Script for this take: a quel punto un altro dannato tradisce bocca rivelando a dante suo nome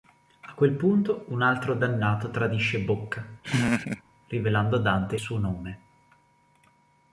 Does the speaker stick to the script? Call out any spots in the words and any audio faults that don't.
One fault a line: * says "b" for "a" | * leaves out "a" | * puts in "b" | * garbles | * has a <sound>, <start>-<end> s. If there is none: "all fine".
* has a laugh, 3.4-4.0 s